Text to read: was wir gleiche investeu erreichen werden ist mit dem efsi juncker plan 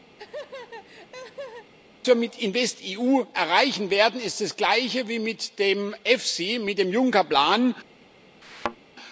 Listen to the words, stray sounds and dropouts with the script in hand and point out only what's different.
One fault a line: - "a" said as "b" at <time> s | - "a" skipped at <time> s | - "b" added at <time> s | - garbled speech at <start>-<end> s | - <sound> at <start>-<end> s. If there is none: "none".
- laugh at 0.2-1.7 s
- "gleiche" said as "mit" at 2.2 s
- "das gleiche wie" added at 4.4 s
- "mit dem" added at 6.6 s
- thud at 8.4-8.8 s